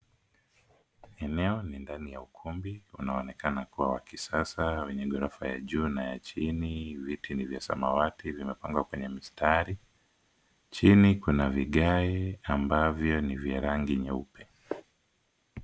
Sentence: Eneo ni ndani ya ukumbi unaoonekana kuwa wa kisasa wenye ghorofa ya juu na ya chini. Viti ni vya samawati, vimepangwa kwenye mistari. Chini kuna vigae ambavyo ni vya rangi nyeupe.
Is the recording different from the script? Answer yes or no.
no